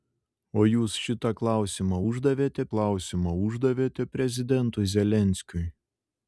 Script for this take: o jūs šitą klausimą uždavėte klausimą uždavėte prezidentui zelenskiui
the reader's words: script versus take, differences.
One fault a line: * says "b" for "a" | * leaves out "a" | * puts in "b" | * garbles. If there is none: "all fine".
all fine